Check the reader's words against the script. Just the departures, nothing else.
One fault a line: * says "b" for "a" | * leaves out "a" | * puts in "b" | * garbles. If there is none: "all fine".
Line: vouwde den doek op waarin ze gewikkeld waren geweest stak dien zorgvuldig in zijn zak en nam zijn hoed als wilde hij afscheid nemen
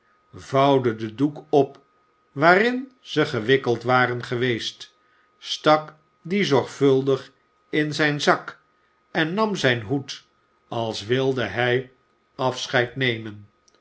all fine